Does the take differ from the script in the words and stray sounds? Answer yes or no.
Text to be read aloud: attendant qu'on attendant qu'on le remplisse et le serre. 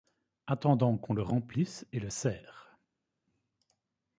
yes